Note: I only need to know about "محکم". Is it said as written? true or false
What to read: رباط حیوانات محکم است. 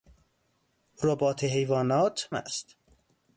false